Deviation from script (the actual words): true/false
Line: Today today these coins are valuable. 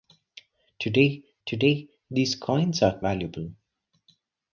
false